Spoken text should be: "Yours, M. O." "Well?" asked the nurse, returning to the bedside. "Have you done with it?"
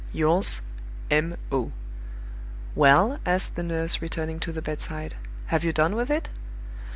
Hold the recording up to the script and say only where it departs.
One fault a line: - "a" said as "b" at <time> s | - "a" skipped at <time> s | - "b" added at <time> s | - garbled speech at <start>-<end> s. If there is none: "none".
none